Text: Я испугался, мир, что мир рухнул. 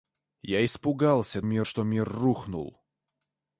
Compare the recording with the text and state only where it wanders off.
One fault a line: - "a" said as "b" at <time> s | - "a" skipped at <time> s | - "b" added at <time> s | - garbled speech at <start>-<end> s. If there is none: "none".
none